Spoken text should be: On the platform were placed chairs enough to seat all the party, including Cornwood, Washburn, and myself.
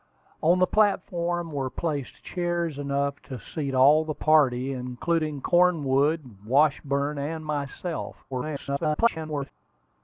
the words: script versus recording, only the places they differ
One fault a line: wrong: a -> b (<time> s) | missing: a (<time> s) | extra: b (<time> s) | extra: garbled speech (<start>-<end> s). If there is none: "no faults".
extra: garbled speech (8.3-9.5 s)